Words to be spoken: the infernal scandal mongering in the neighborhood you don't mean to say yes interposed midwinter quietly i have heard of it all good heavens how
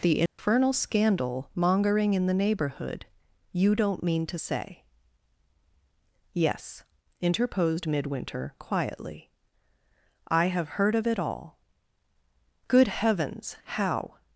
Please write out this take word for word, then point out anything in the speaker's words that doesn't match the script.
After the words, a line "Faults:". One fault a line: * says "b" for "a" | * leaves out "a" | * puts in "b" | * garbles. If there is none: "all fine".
the infernal scandal mongering in the neighborhood you don't mean to say yes interposed midwinter quietly i have heard of it all good heavens how
Faults:
all fine